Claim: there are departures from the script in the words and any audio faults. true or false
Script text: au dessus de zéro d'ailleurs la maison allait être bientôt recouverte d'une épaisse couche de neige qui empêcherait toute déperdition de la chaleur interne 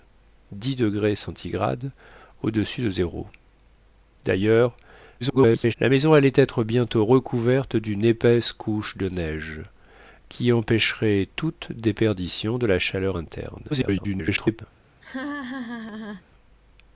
true